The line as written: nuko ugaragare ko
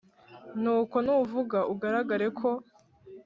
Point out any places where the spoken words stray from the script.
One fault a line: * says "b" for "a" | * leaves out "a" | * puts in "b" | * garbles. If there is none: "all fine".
* puts in "nuvuga"